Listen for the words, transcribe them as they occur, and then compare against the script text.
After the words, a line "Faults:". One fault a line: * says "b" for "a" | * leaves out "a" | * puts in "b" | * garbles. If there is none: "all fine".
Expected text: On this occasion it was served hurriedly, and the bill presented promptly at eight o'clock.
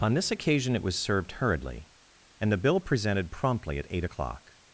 On this occasion it was served hurriedly, and the bill presented promptly at eight o'clock.
Faults:
all fine